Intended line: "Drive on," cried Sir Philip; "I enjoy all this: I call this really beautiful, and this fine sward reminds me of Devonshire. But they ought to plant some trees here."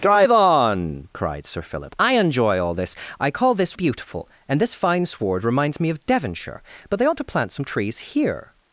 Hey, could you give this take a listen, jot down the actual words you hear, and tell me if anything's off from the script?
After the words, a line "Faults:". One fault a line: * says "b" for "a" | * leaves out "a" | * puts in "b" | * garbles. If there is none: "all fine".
"Drive on," cried Sir Philip; "I enjoy all this: I call this beautiful, and this fine sward reminds me of Devonshire. But they ought to plant some trees here."
Faults:
* leaves out "really"